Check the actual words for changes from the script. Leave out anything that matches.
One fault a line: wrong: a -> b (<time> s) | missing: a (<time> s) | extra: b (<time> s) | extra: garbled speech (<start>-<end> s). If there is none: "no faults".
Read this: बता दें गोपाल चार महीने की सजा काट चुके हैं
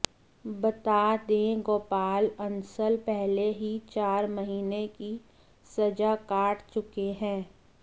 extra: अंसल पहले ही (2.4 s)